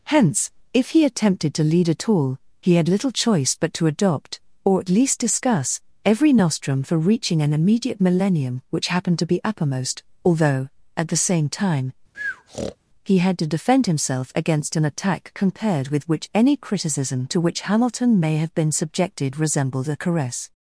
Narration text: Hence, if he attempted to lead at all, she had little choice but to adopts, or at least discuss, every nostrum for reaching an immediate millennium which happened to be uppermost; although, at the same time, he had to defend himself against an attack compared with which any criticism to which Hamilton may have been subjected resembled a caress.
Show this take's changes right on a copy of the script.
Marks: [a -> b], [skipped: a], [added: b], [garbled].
Hence, if he attempted to lead at all, [she -> he] had little choice but to [adopts, -> adopt] or at least discuss, every nostrum for reaching an immediate millennium which happened to be uppermost; although, at the same time, he had to defend himself against an attack compared with which any criticism to which Hamilton may have been subjected resembled a caress.